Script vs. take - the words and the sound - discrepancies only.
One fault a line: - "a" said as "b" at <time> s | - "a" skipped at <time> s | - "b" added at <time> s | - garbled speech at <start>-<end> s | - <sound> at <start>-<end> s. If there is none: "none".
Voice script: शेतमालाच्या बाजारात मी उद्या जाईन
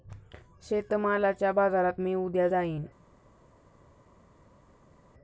none